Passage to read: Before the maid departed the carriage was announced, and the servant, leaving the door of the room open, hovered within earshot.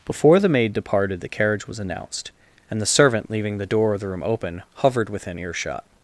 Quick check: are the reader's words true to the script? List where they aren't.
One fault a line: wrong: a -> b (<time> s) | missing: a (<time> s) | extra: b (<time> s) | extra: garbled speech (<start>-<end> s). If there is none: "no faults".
no faults